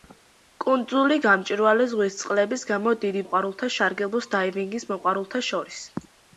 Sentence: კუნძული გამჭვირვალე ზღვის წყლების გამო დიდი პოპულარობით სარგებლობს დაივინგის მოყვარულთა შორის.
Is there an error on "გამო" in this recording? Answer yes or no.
no